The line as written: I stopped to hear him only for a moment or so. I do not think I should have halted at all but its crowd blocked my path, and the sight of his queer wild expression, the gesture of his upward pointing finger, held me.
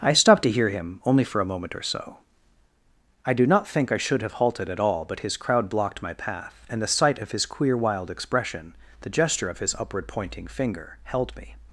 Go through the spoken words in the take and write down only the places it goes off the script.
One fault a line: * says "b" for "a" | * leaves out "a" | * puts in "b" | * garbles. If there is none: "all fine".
* says "his" for "its"